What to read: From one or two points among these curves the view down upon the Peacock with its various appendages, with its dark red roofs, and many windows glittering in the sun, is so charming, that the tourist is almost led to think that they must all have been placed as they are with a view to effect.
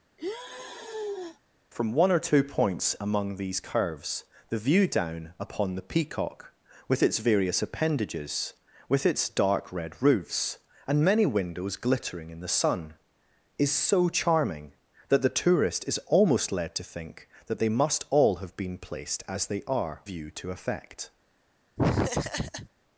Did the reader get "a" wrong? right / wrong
wrong